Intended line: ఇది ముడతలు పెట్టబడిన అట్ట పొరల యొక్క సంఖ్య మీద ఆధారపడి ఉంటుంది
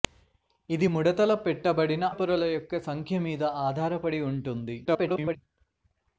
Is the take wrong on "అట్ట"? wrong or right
wrong